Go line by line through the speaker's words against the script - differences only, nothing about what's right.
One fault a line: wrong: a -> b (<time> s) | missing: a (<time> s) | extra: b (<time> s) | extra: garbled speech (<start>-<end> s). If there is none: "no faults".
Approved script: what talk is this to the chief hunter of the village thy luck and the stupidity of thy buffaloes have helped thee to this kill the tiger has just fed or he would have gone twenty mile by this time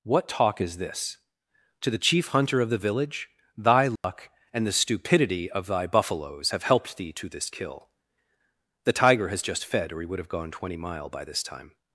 no faults